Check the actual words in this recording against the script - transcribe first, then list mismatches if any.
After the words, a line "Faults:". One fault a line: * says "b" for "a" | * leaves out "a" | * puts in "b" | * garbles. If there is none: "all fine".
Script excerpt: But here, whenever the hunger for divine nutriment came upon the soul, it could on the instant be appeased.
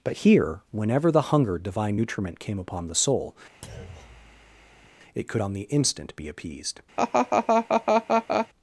But here, whenever the hunger divine nutriment came upon the soul, it could on the instant be appeased.
Faults:
* leaves out "for"